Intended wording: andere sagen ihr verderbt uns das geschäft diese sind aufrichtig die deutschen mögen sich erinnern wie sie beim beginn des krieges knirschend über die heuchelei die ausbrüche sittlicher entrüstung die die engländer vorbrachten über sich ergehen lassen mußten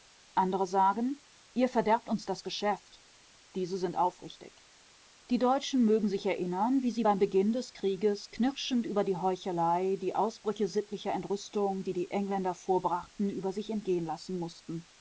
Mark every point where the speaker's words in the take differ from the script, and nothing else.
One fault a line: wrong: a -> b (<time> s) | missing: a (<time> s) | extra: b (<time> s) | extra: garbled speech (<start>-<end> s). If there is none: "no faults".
no faults